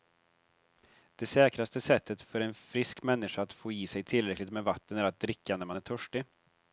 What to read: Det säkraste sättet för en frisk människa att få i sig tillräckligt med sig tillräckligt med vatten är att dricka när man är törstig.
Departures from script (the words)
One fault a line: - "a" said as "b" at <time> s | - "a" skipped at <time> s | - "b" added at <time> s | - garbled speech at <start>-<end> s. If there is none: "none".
- "sig tillräckligt med" skipped at 4.6 s